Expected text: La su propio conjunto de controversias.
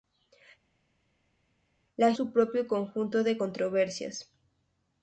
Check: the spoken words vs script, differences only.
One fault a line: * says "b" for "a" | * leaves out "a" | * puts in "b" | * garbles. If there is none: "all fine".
all fine